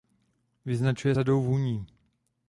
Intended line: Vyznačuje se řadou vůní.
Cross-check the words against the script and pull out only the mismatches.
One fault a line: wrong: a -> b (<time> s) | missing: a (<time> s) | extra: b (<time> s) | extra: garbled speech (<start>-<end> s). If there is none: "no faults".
missing: se (1.1 s)